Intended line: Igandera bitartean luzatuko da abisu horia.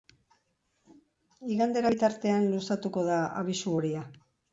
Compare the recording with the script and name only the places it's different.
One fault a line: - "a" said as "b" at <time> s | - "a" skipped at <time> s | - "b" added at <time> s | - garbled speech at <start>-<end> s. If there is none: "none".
none